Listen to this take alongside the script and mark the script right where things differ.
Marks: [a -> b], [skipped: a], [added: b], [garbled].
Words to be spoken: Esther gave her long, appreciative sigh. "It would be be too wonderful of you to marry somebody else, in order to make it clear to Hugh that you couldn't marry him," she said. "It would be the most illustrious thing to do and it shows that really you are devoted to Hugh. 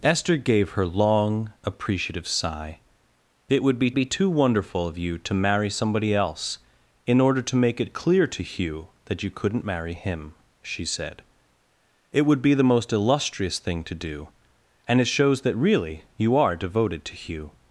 Esther gave her long, appreciative sigh. "It would be be too wonderful of you to marry somebody else, in order to make it clear to Hugh that you couldn't marry him," she said. "It would be the most illustrious thing to do and it shows that really you are devoted to Hugh.